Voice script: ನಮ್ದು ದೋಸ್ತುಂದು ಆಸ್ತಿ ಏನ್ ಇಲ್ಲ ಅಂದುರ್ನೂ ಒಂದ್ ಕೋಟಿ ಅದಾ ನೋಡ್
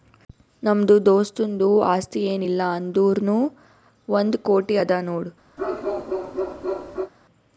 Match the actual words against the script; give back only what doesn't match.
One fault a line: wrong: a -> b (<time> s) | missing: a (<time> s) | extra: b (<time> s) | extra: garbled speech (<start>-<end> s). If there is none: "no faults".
no faults